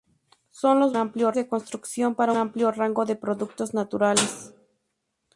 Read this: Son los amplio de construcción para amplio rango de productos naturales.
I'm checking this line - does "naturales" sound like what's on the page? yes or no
yes